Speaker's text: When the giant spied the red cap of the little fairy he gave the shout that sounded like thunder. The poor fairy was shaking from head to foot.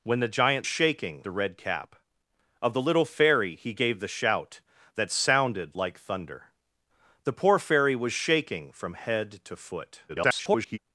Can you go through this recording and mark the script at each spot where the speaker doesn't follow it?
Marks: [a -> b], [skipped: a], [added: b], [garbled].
When the giant [spied -> shaking] the red cap of the little fairy he gave the shout that sounded like thunder. The poor fairy was shaking from head to foot. [garbled]